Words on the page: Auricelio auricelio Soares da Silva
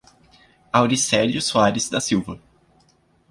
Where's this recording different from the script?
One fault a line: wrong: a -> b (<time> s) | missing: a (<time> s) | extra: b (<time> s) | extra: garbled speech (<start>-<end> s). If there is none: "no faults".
missing: auricelio (1.4 s)